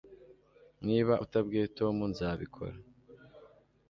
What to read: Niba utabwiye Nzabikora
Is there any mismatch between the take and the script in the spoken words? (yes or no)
yes